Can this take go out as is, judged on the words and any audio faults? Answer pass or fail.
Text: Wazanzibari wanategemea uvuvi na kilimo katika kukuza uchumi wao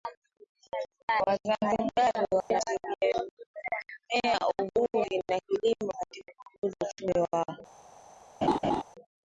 fail